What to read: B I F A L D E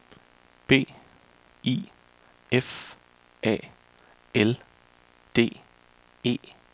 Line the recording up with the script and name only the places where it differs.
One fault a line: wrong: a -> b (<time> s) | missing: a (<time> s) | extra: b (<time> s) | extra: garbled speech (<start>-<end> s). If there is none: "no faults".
no faults